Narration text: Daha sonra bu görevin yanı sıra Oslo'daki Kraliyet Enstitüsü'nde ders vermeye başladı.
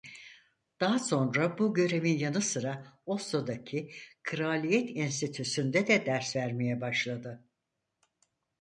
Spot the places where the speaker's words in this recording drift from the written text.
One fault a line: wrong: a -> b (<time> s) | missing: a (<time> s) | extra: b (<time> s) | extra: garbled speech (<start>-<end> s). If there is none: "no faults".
extra: de (5.9 s)